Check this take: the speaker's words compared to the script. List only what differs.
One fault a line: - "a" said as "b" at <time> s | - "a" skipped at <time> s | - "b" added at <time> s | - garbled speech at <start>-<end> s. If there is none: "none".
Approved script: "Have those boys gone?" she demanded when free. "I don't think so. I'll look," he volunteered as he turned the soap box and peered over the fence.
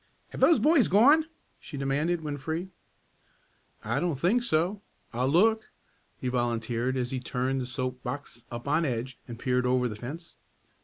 - "up on edge" added at 8.5 s